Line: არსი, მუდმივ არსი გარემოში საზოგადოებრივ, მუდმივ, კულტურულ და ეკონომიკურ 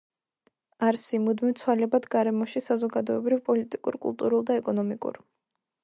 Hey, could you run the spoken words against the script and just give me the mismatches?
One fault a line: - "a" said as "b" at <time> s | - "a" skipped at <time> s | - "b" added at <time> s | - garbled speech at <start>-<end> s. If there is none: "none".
- "არსი" said as "ცვალებად" at 1.6 s
- "მუდმივ" said as "პოლიტიკურ" at 3.5 s